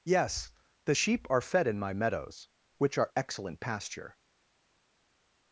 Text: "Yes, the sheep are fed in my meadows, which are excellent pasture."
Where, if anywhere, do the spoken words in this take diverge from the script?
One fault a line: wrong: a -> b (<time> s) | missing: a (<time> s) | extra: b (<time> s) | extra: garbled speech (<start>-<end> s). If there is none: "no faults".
no faults